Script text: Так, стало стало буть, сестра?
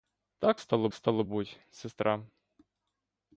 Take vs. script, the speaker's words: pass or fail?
pass